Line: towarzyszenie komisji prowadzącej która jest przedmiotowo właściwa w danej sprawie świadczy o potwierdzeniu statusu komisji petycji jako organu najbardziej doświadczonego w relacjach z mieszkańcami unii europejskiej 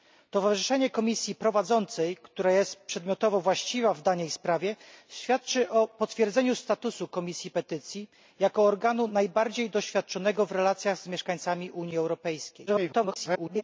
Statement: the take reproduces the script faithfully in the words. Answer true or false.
false